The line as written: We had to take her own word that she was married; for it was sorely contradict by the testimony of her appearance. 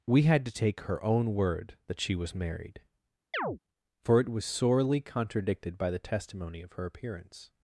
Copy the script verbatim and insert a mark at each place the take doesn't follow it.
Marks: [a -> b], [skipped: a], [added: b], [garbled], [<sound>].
We had to take her own word that she was married; [chirp] for it was sorely [contradict -> contradicted] by the testimony of her appearance.